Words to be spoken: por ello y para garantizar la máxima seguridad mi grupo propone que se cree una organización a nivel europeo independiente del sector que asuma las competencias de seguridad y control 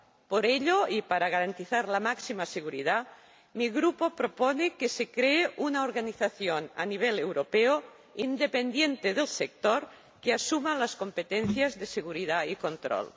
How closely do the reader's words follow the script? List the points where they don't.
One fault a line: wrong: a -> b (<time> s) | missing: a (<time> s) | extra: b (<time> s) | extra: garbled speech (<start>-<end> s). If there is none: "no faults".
no faults